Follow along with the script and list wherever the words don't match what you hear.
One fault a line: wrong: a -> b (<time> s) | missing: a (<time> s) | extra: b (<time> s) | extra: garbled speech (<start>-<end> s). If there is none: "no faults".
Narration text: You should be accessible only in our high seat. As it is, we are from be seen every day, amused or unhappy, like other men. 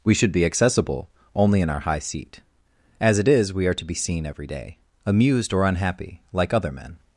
wrong: You -> We (0.0 s)
wrong: from -> to (3.7 s)